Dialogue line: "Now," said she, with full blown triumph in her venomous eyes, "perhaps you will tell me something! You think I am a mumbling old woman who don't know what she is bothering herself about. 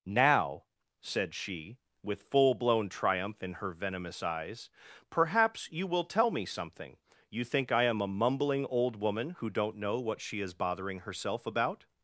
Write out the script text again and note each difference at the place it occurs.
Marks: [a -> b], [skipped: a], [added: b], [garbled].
"Now," said she, with full blown triumph in her venomous eyes, "perhaps you will tell me something! You think I am a mumbling old woman who don't know what she is bothering herself about.